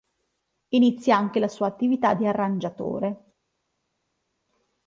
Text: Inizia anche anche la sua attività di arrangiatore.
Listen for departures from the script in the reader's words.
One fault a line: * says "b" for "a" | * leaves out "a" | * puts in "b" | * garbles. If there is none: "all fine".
* leaves out "anche"